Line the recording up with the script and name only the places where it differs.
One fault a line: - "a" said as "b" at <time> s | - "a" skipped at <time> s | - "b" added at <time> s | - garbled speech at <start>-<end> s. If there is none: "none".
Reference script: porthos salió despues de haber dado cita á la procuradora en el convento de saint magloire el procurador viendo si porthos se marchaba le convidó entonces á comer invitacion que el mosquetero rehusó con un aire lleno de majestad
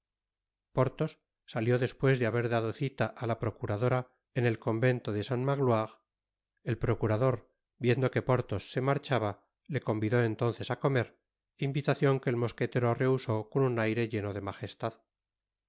- "si" said as "que" at 8.1 s